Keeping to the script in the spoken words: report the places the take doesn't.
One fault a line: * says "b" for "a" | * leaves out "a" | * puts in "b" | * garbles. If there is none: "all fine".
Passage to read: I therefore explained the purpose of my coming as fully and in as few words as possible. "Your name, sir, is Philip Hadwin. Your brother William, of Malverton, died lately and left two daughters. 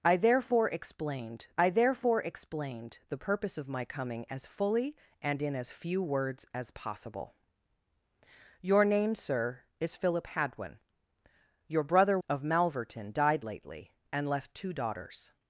* puts in "I therefore explained"
* leaves out "William"